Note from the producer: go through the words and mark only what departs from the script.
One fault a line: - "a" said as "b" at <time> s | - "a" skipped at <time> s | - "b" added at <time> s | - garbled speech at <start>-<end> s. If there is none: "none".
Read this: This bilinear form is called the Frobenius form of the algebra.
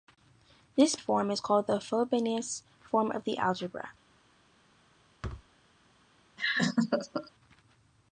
- "bilinear" skipped at 0.9 s